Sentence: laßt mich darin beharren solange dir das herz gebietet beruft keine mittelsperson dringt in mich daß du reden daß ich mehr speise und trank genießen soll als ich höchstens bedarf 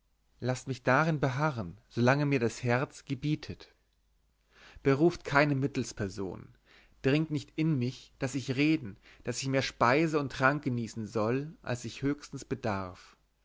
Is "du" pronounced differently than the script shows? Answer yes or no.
yes